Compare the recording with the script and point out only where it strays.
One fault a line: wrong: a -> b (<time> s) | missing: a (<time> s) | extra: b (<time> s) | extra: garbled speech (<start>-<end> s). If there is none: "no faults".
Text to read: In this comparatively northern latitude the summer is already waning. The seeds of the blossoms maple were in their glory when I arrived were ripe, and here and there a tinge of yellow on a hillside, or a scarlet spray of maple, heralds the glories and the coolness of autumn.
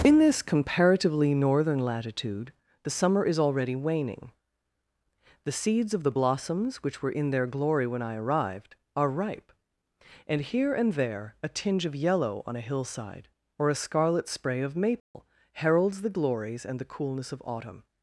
wrong: maple -> which (6.8 s)
wrong: were -> are (8.9 s)